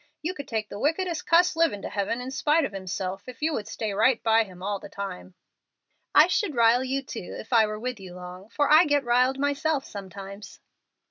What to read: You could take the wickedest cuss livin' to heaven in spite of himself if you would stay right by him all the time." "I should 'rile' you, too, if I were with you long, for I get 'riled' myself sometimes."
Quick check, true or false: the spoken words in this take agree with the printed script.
true